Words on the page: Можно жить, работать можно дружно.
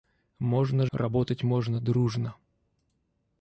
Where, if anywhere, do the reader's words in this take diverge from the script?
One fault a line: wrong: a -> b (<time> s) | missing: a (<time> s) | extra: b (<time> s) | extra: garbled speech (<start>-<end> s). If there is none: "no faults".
missing: жить (0.9 s)